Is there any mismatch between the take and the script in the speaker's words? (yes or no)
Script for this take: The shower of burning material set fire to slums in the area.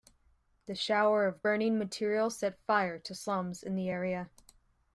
no